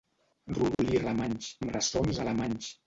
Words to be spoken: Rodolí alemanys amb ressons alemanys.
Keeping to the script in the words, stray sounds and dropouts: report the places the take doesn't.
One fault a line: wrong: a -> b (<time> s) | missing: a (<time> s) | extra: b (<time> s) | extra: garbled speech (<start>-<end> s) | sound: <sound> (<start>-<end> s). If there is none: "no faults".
sound: dropout (0.7-0.8 s)